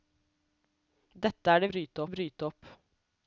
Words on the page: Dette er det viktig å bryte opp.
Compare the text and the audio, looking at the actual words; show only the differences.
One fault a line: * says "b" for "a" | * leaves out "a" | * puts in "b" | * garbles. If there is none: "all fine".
* says "bryte" for "viktig"